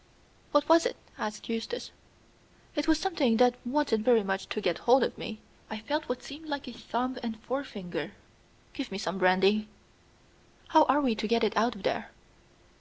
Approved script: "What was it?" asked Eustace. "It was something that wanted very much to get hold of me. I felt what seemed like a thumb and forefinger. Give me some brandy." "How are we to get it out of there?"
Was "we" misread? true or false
false